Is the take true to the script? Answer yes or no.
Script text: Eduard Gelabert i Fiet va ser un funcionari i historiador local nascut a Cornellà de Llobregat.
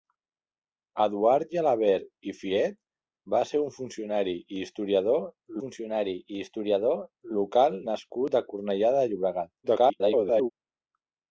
no